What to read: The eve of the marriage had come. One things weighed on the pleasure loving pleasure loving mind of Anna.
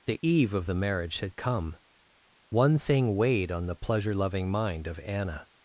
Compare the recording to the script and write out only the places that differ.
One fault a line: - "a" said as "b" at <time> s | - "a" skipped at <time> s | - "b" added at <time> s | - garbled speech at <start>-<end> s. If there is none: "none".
- "things" said as "thing" at 2.7 s
- "pleasure loving" skipped at 4.5 s